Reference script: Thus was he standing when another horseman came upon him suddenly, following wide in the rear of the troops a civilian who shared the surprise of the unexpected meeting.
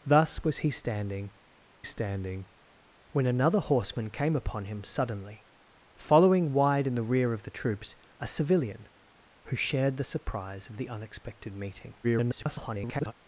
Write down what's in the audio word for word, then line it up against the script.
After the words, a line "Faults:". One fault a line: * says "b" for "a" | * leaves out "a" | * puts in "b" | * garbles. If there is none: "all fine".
Thus was he standing standing when another horseman came upon him suddenly, following wide in the rear of the troops a civilian who shared the surprise of the unexpected meeting. [garbled]
Faults:
* puts in "standing"
* garbles